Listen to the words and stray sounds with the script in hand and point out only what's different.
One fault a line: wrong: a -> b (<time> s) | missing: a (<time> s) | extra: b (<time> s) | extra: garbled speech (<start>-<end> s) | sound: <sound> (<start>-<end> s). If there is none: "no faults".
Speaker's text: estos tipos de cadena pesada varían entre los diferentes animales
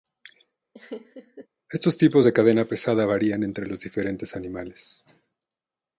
sound: laugh (0.7-1.5 s)